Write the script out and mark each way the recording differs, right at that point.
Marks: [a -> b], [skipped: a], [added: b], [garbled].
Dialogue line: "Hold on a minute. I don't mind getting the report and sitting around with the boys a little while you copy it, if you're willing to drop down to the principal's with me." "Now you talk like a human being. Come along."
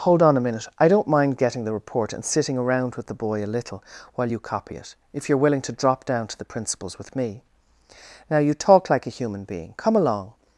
"Hold on a minute. I don't mind getting the report and sitting around with the [boys -> boy] a little while you copy it, if you're willing to drop down to the principal's with me." "Now you talk like a human being. Come along."